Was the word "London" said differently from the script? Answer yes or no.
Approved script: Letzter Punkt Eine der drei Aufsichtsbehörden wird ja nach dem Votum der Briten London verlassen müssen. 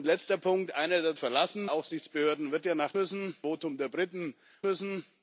yes